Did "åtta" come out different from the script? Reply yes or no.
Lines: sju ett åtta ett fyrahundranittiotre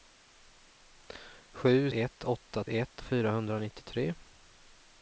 no